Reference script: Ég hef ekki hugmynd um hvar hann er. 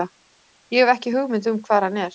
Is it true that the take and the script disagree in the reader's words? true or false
false